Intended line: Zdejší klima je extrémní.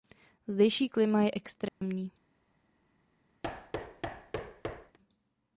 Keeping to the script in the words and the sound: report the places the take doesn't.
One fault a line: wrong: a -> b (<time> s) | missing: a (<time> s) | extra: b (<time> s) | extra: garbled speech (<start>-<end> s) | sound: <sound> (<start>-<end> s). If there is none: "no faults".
sound: dropout (1.7-1.8 s)
sound: thud (3.4-5.0 s)